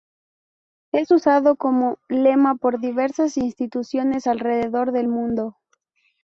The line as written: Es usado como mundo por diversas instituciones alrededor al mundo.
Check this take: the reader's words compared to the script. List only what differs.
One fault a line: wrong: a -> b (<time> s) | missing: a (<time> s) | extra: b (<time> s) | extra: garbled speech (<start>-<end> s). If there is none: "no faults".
wrong: mundo -> lema (2.1 s)
wrong: al -> del (4.9 s)